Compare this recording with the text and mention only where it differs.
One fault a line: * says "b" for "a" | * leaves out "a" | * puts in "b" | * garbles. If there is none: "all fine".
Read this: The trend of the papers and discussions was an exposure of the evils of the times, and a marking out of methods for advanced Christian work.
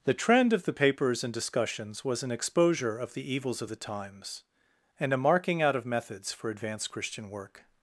all fine